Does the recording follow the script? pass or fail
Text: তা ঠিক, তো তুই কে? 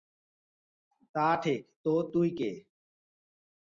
pass